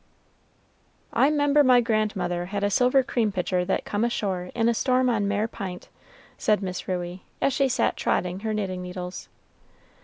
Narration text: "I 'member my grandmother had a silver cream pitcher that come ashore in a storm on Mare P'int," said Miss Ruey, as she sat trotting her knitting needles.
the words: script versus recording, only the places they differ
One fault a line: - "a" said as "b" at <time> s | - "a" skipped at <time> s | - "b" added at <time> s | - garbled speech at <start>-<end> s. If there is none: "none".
none